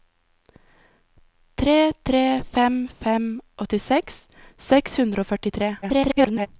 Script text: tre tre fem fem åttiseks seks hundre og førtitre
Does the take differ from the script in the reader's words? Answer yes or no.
yes